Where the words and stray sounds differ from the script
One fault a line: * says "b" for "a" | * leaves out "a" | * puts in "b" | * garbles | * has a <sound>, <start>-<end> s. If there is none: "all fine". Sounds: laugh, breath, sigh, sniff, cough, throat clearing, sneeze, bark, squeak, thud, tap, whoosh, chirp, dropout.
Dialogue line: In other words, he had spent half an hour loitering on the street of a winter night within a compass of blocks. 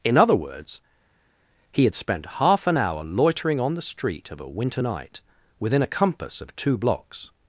* puts in "two"